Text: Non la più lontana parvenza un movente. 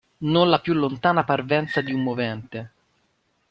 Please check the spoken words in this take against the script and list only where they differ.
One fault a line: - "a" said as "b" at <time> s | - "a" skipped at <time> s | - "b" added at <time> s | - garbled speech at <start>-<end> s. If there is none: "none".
- "di" added at 1.8 s